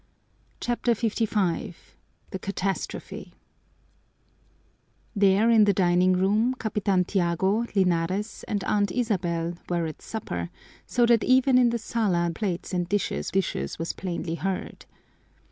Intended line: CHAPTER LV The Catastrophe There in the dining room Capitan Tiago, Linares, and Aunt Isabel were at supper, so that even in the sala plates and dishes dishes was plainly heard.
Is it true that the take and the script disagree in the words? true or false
false